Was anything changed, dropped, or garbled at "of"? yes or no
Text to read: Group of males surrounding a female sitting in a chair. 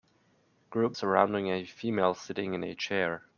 yes